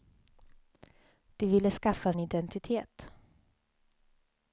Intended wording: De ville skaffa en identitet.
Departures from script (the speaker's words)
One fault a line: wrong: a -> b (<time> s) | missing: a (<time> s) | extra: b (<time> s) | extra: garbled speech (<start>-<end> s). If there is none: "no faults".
no faults